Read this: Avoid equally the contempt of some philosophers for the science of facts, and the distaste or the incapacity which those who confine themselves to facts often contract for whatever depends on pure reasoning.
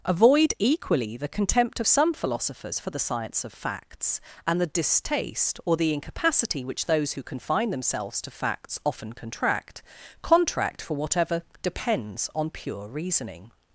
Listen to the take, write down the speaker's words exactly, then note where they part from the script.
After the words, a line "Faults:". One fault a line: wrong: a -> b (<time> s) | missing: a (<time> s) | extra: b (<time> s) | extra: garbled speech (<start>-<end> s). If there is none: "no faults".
Avoid equally the contempt of some philosophers for the science of facts, and the distaste or the incapacity which those who confine themselves to facts often contract contract for whatever depends on pure reasoning.
Faults:
extra: contract (10.2 s)